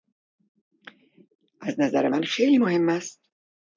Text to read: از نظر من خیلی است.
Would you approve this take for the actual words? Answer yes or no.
no